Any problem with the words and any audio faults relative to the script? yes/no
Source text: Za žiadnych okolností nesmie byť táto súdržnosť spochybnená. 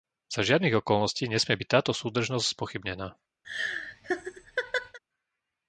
yes